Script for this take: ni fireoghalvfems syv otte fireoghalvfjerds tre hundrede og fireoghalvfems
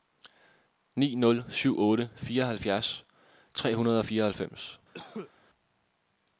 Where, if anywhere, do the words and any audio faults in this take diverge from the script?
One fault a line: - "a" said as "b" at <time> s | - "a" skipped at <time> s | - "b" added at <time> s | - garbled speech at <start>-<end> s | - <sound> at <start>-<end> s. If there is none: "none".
- "fireoghalvfems" said as "nul" at 1.1 s
- cough at 4.9-5.3 s